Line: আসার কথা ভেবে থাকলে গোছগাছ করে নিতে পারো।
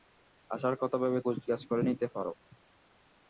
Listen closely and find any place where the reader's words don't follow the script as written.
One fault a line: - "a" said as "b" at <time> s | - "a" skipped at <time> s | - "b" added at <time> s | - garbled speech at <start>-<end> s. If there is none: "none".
- "থাকলে" skipped at 1.2 s